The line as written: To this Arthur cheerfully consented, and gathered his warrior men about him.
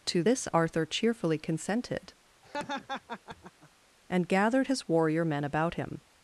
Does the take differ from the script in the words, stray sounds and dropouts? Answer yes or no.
yes